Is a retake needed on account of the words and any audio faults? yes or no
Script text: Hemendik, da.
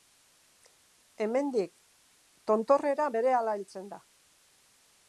yes